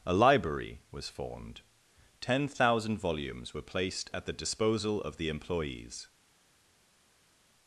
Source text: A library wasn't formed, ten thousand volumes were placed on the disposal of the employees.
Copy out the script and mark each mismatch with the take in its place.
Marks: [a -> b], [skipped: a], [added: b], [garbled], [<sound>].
A library [wasn't -> was] formed, ten thousand volumes were placed [on -> at] the disposal of the employees.